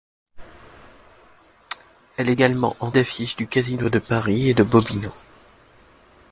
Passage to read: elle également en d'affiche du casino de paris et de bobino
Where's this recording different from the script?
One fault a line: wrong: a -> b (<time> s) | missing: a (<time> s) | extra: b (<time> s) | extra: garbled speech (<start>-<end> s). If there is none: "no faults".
no faults